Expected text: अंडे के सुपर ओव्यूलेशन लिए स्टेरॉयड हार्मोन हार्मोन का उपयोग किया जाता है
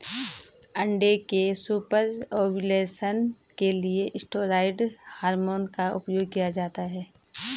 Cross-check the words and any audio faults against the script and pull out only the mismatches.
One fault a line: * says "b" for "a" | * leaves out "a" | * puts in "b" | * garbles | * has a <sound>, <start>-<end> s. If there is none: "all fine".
* puts in "के"
* leaves out "हार्मोन"